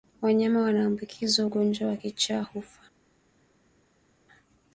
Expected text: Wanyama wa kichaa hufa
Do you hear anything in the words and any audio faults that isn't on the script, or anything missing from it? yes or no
yes